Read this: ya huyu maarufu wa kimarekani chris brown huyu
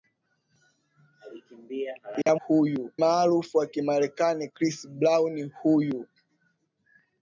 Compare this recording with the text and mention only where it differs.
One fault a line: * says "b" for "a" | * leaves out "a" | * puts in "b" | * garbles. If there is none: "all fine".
all fine